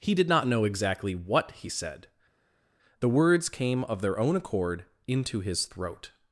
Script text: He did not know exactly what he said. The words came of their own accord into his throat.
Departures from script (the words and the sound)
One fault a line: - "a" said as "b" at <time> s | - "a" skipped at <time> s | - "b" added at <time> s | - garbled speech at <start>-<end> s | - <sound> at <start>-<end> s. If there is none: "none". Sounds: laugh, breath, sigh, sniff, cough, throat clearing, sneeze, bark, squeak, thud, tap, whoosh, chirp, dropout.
none